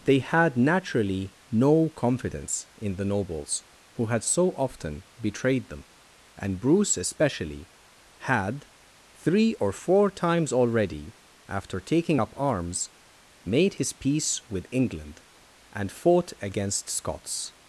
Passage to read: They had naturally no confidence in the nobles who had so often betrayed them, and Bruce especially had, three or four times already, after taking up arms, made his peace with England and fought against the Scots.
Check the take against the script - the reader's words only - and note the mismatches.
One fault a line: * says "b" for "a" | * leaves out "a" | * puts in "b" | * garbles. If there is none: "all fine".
* leaves out "the"